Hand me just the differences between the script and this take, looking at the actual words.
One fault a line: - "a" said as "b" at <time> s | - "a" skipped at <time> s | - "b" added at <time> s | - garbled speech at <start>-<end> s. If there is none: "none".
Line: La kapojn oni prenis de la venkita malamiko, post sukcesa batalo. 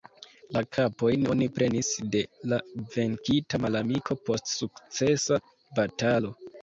none